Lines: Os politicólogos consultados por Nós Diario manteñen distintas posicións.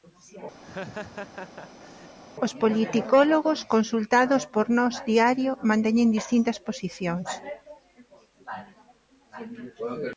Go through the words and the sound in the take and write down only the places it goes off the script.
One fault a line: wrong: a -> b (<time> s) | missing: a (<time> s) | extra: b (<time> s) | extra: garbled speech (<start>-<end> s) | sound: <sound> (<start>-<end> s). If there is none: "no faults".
sound: laugh (0.6-2.2 s)